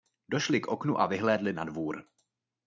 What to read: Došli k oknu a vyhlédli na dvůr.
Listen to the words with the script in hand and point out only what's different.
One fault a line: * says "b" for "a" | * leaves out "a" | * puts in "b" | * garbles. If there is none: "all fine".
all fine